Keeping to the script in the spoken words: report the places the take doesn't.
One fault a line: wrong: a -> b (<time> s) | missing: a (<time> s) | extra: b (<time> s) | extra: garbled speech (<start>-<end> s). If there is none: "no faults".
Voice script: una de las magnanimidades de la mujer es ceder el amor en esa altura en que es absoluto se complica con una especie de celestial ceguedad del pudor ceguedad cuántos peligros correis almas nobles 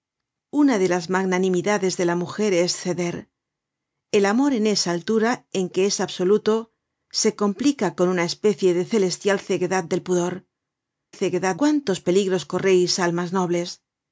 no faults